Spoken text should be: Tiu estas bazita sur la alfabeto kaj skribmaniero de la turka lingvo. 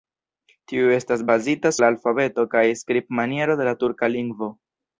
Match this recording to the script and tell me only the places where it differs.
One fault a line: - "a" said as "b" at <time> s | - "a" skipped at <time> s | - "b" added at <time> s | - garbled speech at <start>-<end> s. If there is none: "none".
- "sur" skipped at 1.7 s